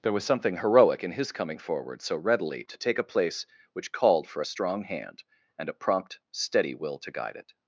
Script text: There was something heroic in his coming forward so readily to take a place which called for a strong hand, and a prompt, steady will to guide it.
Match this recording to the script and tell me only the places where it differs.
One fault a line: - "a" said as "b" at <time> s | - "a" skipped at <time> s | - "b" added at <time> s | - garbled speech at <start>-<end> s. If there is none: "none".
none